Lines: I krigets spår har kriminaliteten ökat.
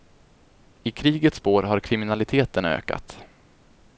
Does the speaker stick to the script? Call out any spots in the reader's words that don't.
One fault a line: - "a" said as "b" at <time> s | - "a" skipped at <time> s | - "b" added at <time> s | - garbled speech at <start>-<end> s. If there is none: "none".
none